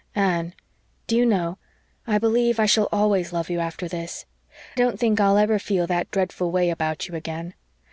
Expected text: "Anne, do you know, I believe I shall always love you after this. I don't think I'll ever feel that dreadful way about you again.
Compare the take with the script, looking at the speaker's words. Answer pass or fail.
fail